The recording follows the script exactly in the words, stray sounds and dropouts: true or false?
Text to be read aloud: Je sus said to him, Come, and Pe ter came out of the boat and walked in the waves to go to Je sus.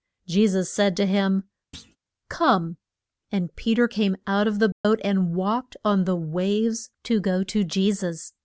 false